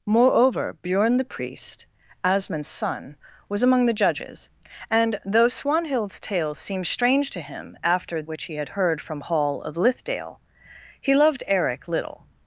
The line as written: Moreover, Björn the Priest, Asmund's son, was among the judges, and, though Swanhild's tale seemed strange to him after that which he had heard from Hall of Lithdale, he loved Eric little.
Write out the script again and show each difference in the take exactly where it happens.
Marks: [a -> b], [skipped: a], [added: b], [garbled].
Moreover, Björn the Priest, Asmund's son, was among the judges, and, though Swanhild's tale seemed strange to him after [skipped: that] which he had heard from Hall of Lithdale, he loved Eric little.